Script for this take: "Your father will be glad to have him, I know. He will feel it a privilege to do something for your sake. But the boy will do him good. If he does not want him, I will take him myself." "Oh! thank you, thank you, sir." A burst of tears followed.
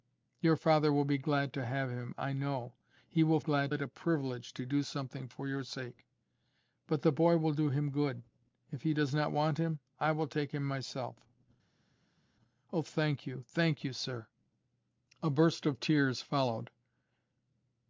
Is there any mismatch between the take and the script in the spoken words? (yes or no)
yes